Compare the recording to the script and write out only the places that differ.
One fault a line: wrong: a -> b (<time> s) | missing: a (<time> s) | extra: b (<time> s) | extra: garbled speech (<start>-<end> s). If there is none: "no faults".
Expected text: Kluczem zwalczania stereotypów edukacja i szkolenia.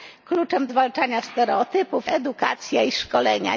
no faults